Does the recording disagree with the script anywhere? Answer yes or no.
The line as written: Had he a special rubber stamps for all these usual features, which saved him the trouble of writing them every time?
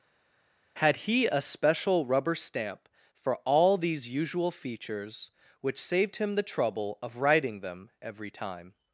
yes